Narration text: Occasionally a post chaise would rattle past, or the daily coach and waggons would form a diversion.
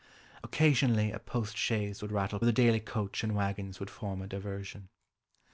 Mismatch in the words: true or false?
true